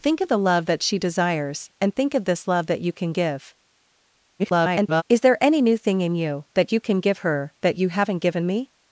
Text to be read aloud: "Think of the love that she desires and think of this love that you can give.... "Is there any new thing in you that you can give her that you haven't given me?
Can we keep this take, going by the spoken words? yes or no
no